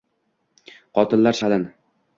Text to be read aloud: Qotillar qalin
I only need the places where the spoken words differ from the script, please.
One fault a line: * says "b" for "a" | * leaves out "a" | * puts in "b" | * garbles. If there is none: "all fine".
all fine